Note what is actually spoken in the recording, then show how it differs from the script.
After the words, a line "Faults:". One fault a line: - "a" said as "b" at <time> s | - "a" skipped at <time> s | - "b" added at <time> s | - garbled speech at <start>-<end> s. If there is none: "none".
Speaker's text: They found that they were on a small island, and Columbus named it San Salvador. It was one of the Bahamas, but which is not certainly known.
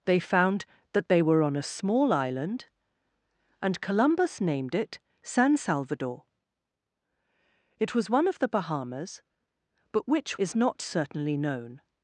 They found that they were on a small island, and Columbus named it San Salvador. It was one of the Bahamas, but which is not certainly known.
Faults:
none